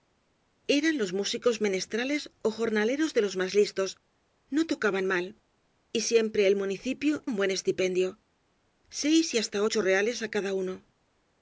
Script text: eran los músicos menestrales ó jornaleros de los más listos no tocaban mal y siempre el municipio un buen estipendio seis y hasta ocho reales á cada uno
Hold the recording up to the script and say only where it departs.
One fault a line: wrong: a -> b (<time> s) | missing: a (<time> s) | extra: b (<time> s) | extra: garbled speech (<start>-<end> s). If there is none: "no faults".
no faults